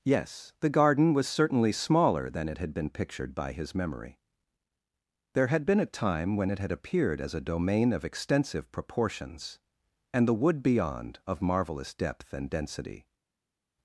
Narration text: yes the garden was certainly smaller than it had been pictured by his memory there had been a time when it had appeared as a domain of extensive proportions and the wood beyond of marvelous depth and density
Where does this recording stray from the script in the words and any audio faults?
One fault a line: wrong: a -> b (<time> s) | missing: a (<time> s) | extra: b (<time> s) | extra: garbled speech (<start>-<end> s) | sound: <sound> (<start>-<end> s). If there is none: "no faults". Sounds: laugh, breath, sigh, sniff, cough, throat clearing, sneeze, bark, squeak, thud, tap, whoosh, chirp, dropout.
no faults